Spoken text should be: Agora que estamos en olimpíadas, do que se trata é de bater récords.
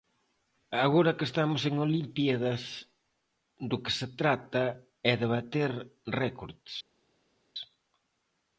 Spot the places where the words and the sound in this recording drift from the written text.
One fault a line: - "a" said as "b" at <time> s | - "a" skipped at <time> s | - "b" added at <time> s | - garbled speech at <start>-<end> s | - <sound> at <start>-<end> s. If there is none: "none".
none